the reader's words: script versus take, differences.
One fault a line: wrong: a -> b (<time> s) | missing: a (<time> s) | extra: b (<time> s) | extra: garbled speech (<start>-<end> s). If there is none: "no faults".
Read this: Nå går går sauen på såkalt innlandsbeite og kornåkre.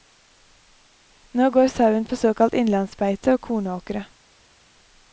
missing: går (1.7 s)